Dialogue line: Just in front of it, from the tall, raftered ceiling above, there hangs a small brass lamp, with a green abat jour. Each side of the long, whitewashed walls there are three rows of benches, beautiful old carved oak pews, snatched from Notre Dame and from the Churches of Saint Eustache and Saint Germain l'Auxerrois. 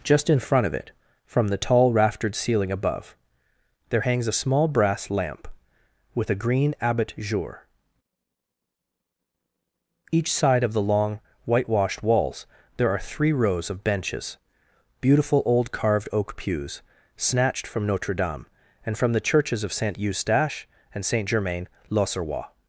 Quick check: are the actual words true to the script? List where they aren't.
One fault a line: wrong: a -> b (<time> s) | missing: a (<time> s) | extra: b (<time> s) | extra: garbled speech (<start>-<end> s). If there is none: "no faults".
no faults